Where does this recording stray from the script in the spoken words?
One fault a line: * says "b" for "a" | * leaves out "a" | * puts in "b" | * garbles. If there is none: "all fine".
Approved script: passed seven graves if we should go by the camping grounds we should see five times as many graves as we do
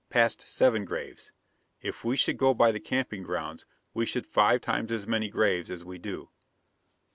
* leaves out "see"